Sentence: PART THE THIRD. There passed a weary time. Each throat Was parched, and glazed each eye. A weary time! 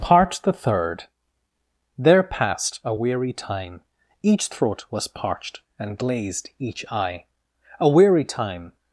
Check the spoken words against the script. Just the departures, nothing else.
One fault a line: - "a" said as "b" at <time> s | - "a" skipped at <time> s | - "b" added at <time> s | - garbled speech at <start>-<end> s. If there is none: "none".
none